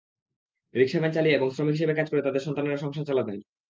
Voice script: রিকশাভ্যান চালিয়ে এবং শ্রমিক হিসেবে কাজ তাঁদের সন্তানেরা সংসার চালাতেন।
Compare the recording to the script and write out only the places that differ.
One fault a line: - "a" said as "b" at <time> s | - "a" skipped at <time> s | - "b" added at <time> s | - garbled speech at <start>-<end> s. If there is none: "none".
- "করে" added at 2.1 s